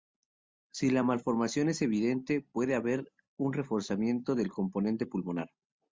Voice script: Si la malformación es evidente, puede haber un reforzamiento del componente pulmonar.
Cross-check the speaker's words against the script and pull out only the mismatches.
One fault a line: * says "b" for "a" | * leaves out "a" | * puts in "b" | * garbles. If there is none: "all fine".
all fine